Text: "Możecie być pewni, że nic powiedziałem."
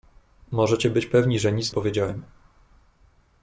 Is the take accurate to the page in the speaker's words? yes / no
yes